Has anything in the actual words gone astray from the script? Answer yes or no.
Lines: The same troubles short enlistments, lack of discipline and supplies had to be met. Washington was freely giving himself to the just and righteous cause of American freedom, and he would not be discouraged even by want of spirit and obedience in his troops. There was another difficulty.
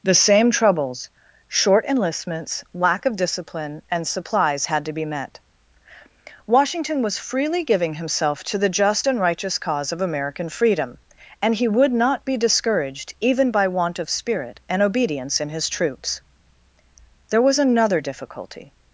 no